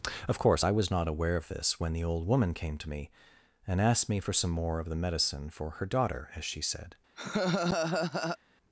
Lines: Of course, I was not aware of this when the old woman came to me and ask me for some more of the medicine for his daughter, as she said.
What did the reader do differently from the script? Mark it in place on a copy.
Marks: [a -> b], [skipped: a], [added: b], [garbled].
Of course, I was not aware of this when the old woman came to me and [ask -> asked] me for some more of the medicine for [his -> her] daughter, as she said.